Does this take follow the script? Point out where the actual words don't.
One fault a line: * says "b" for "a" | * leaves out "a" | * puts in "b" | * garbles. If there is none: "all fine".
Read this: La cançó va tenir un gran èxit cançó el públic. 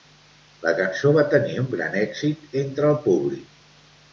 * says "entre" for "cançó"